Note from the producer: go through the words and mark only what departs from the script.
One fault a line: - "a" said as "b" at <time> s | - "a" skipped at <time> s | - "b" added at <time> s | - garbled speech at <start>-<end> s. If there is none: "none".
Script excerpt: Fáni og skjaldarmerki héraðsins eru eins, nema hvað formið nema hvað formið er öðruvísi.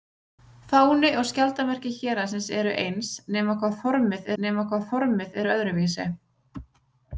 none